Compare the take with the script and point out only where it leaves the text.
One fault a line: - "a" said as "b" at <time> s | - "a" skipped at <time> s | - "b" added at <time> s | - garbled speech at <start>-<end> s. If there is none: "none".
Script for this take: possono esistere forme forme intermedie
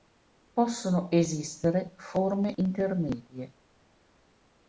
- "forme" skipped at 2.5 s